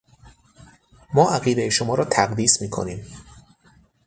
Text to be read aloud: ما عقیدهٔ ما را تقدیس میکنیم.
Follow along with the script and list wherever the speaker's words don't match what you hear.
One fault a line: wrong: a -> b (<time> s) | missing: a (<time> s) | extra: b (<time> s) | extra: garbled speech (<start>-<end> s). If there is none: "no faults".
wrong: ما -> شما (1.7 s)